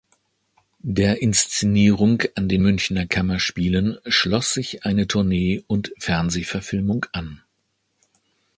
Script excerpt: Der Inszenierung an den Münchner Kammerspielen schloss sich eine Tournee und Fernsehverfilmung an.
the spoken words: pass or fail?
pass